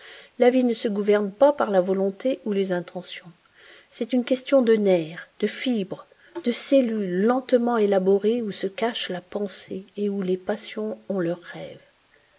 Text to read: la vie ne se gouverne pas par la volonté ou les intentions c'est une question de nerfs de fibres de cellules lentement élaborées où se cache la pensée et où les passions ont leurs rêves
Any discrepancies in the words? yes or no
no